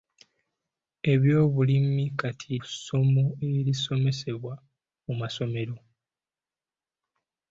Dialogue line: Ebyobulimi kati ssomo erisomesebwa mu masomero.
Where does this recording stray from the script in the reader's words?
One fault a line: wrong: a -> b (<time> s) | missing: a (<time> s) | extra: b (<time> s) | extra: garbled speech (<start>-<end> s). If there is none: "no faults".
no faults